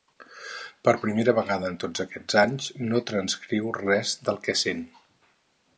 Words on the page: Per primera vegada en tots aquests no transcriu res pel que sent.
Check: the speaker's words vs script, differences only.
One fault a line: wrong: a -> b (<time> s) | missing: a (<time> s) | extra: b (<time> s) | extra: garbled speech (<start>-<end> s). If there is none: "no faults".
extra: anys (2.4 s)
wrong: pel -> del (4.3 s)